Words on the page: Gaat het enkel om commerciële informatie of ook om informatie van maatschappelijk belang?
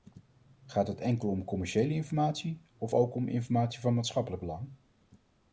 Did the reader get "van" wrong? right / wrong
right